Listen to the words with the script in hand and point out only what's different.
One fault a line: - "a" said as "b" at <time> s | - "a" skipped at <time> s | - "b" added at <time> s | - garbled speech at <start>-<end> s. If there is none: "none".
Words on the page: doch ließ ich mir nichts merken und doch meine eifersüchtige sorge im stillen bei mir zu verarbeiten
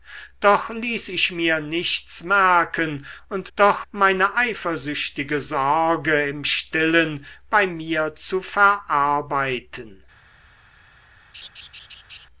none